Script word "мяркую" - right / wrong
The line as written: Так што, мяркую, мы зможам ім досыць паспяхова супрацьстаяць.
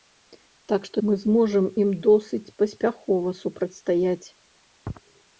wrong